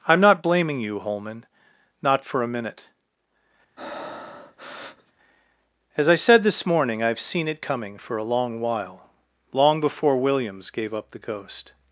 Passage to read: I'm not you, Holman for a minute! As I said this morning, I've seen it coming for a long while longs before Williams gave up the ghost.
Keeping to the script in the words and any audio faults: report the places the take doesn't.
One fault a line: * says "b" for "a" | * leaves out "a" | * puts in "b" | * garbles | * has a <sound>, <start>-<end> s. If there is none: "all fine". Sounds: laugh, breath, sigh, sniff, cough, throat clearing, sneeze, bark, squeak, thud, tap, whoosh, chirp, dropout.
* puts in "blaming"
* puts in "not"
* has a breath, 3.8-5.1 s
* says "long" for "longs"